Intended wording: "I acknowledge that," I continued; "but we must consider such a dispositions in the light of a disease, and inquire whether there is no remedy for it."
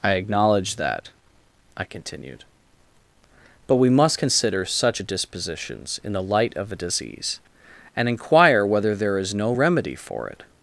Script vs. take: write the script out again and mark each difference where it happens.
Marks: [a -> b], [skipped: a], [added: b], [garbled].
"I acknowledge that," I continued; "but we must consider such a dispositions in the light of a disease, and inquire whether there is no remedy for it."